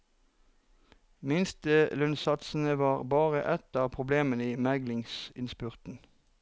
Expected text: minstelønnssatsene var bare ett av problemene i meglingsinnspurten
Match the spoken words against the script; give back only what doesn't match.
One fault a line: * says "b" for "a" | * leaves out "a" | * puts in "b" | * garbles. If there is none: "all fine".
all fine